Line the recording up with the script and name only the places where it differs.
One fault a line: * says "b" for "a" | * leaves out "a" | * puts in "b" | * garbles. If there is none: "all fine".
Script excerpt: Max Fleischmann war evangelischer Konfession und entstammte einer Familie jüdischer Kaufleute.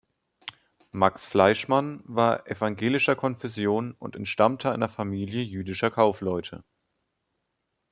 all fine